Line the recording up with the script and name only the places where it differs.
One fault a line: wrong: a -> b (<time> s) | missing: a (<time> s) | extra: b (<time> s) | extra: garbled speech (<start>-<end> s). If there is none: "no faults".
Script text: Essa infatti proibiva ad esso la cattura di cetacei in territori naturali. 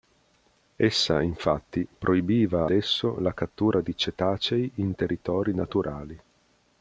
missing: ad (2.7 s)